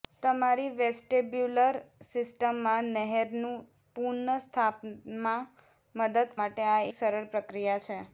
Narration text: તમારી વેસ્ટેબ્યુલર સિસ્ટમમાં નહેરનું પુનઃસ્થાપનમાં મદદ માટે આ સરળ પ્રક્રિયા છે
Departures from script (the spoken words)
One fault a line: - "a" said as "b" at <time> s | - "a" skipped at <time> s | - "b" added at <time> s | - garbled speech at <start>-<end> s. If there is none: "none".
none